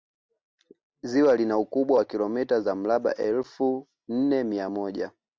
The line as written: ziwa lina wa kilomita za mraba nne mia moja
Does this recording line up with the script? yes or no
no